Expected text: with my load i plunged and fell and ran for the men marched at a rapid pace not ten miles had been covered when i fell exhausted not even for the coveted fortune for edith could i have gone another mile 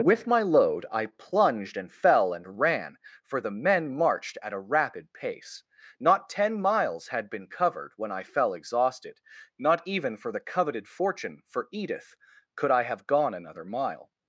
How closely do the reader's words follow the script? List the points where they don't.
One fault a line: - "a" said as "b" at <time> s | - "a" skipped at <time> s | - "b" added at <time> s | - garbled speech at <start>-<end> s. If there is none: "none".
none